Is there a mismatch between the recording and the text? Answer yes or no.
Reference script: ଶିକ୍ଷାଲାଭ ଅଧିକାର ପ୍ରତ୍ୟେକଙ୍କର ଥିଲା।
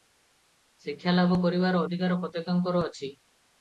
yes